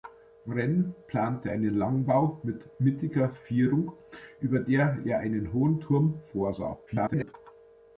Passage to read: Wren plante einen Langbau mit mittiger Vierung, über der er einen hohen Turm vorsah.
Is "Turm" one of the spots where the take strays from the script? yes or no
no